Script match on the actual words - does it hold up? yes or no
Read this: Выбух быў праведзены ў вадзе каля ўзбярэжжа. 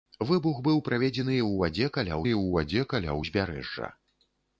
no